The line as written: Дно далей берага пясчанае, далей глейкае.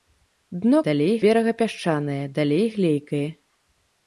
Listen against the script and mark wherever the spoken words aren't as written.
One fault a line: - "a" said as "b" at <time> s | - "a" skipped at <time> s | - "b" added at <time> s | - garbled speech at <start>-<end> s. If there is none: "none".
none